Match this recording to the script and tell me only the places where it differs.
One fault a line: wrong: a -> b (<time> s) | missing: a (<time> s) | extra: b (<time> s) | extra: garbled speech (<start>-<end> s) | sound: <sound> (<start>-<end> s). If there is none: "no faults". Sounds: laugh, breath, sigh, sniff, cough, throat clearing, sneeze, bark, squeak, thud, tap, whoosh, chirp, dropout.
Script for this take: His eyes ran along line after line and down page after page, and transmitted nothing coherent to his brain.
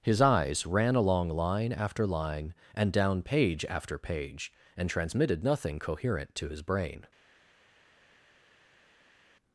no faults